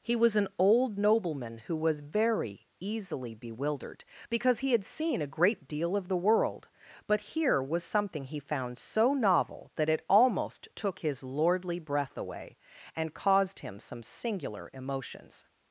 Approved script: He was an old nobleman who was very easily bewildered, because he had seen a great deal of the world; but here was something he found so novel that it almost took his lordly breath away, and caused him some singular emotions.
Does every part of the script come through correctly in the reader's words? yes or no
yes